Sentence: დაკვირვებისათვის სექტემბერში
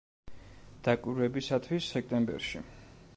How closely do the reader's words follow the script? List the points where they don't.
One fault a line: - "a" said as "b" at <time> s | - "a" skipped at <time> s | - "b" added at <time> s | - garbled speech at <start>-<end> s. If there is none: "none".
none